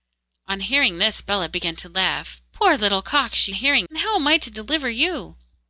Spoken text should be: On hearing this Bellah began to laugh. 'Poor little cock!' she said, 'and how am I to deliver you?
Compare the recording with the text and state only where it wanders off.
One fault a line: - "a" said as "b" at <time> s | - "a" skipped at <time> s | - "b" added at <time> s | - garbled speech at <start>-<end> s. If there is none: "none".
- "said" said as "hearing" at 3.5 s